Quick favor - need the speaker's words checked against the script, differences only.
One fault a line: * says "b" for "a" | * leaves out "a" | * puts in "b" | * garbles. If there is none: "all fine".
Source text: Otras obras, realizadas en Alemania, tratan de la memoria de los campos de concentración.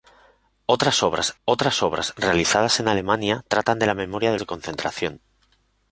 * puts in "otras obras"
* leaves out "los campos"